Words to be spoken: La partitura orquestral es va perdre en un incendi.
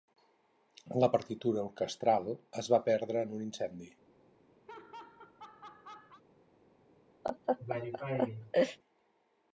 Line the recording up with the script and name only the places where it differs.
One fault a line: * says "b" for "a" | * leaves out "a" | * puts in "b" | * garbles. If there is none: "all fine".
all fine